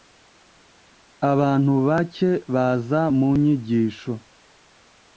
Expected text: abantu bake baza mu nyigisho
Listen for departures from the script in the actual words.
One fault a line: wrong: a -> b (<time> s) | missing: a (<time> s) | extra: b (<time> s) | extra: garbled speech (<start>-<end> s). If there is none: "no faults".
no faults